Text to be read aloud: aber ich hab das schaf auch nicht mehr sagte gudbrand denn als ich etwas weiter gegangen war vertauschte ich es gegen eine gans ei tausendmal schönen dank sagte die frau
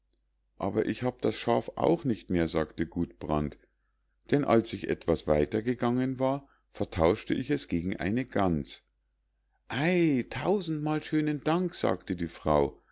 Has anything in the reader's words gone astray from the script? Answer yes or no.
no